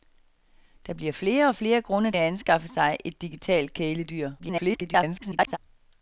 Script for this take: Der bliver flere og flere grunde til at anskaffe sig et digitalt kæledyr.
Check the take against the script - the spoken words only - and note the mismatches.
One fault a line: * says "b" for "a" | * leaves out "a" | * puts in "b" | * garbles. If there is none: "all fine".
* leaves out "til"
* garbles